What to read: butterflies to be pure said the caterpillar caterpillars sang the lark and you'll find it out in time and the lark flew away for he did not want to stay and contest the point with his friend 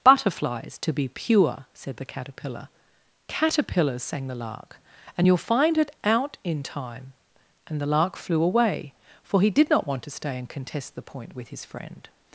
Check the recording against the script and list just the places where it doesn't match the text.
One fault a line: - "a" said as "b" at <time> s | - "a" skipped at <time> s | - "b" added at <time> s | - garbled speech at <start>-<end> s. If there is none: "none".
none